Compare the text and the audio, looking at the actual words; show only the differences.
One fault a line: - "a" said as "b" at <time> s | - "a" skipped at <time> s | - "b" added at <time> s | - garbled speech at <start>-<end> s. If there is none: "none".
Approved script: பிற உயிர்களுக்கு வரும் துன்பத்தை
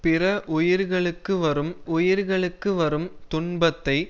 - "உயிர்களுக்கு வரும்" added at 1.9 s